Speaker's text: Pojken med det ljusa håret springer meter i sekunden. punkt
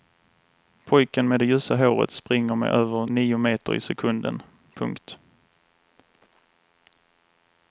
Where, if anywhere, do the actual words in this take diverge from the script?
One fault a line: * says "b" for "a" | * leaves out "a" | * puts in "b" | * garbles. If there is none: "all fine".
* puts in "med över nio"